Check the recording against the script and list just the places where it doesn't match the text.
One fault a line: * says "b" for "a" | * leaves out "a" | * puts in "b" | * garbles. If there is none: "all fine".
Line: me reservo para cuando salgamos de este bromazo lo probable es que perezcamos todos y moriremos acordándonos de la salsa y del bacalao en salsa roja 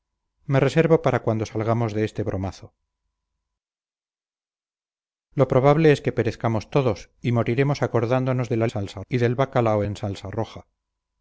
all fine